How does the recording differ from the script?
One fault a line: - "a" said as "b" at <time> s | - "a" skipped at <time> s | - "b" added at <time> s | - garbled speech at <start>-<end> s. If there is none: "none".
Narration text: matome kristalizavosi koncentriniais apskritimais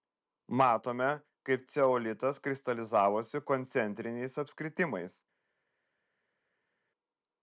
- "kaip ceolitas" added at 1.5 s